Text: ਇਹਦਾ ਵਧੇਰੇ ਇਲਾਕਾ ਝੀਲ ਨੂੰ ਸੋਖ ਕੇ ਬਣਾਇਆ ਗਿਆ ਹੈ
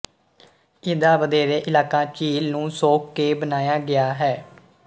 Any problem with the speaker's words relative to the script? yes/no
no